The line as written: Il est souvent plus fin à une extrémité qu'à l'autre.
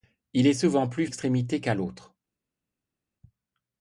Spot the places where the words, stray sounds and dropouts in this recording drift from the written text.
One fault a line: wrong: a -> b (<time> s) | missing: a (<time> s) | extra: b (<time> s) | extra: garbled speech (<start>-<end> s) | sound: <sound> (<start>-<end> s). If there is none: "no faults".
missing: fin à une (1.1 s)